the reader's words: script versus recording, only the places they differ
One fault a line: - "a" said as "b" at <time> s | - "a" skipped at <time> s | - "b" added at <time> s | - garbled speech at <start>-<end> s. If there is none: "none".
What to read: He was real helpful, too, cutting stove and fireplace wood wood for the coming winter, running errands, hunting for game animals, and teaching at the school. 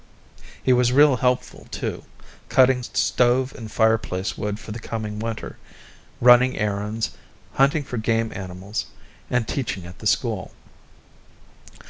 - "wood" skipped at 4.6 s